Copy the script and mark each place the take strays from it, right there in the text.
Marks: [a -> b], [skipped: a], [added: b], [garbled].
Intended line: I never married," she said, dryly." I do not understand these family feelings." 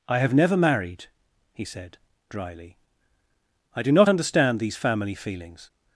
I [added: have] never married," [she -> he] said, dryly." I do not understand these family feelings."